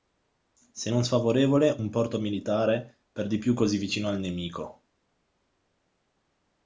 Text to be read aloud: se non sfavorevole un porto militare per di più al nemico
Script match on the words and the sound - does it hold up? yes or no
no